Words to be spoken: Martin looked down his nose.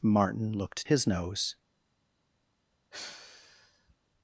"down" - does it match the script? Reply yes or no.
no